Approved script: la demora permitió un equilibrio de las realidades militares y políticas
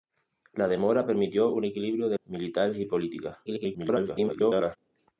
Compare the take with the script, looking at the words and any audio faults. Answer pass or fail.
fail